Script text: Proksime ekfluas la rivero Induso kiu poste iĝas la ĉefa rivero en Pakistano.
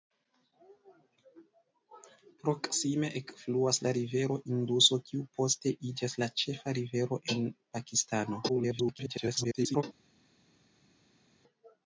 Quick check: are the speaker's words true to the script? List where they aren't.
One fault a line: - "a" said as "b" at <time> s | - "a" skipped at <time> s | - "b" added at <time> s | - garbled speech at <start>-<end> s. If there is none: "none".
- garbled speech at 8.5-9.8 s